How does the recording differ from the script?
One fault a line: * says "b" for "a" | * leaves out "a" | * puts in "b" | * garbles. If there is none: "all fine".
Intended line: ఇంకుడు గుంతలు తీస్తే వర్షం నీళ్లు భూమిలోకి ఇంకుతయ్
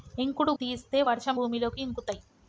* leaves out "గుంతలు"
* leaves out "నీళ్లు"